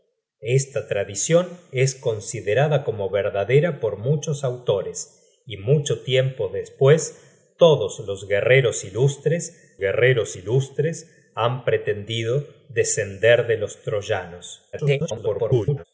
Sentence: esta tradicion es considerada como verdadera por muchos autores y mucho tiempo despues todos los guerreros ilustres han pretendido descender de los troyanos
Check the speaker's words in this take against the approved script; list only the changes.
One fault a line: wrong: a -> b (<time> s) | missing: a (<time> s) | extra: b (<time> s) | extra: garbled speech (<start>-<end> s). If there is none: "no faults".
extra: guerreros ilustres (9.8 s)
extra: garbled speech (14.7-15.8 s)